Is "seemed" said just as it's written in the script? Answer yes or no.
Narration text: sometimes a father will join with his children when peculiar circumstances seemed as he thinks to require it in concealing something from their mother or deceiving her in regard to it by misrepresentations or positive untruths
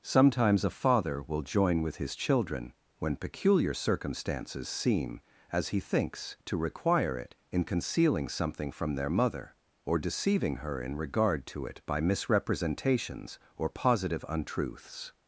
no